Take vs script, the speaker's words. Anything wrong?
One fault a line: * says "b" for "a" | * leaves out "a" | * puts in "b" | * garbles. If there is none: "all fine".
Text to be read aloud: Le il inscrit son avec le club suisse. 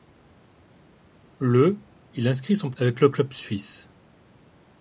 all fine